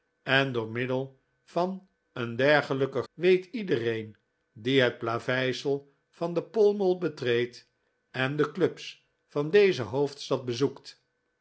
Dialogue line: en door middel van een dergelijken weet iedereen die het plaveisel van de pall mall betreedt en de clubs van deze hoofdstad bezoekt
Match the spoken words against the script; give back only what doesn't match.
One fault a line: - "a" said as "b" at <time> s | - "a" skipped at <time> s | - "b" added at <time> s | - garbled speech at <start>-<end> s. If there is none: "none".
none